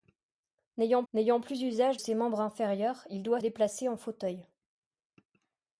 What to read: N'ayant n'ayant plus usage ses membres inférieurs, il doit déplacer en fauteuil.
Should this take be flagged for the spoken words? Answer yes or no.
no